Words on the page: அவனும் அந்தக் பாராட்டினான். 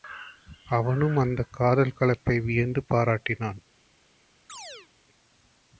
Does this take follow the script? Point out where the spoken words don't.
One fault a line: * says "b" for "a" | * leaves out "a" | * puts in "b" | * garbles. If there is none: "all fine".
* puts in "காதல் கலப்பை வியந்து"